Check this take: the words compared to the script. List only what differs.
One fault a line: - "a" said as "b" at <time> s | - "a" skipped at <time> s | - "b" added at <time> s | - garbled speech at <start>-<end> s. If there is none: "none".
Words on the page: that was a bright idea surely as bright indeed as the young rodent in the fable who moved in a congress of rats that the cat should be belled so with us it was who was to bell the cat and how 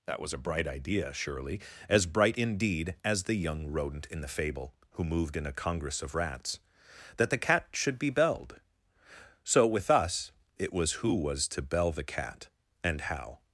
none